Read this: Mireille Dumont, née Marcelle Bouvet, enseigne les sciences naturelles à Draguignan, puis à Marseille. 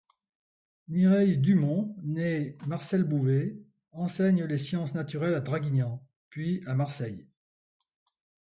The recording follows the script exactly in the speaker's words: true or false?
true